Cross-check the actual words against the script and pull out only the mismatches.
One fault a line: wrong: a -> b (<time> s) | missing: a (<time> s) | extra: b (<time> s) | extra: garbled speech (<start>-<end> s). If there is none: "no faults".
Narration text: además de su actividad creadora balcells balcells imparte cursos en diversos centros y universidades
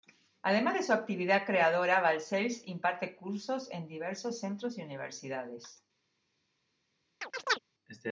missing: balcells (2.7 s)